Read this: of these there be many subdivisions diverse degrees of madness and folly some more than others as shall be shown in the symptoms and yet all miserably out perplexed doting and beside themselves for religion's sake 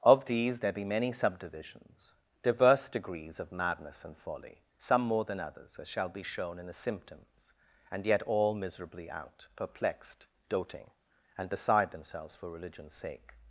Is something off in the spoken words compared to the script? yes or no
no